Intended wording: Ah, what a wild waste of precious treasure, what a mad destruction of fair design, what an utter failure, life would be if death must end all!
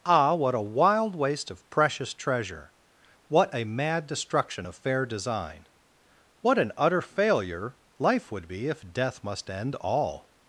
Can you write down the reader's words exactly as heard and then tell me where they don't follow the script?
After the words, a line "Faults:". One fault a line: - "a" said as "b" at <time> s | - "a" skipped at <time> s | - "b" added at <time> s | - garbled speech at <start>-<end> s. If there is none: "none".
Ah, what a wild waste of precious treasure, what a mad destruction of fair design, what an utter failure, life would be if death must end all!
Faults:
none